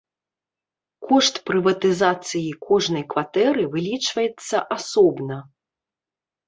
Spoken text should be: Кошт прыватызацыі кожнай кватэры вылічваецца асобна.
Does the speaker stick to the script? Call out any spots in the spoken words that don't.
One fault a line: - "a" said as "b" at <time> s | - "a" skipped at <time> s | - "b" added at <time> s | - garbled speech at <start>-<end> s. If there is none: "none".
none